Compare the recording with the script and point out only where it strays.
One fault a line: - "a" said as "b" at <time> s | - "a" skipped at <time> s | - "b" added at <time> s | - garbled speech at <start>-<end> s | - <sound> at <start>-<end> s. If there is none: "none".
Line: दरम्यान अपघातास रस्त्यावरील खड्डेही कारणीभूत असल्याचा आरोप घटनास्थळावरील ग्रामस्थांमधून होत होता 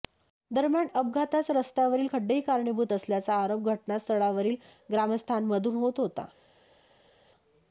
none